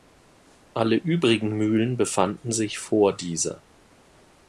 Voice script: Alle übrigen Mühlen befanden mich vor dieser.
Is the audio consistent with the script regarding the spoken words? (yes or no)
no